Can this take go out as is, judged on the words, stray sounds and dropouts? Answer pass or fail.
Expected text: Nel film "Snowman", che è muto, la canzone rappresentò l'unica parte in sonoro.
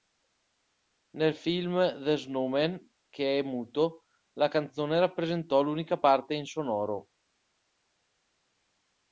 fail